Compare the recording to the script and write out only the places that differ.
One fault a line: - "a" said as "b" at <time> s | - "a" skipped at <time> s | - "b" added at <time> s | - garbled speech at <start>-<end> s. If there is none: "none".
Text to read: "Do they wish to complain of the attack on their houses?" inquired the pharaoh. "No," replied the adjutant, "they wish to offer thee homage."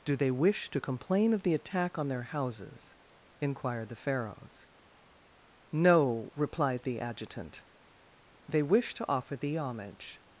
- "pharaoh" said as "pharaohs" at 4.0 s